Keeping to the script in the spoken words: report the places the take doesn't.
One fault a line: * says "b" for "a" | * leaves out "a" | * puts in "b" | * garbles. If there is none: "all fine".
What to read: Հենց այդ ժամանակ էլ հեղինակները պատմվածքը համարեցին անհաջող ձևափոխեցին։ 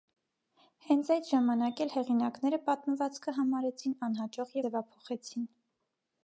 all fine